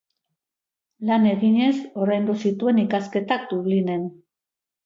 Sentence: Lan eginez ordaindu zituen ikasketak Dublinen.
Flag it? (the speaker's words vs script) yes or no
no